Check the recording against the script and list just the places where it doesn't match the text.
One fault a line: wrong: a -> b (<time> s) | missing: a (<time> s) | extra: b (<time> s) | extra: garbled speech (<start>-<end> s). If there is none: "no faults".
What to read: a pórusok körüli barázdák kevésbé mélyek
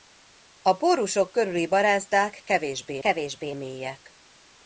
extra: kevésbé (3.0 s)